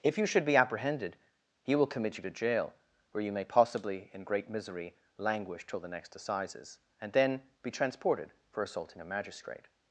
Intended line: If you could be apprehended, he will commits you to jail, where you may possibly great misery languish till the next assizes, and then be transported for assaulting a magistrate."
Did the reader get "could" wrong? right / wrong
wrong